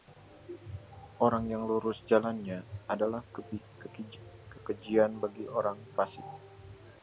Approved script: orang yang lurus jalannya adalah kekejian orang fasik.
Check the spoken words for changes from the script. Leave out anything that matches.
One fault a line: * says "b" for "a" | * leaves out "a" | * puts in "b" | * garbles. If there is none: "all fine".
* puts in "bagi"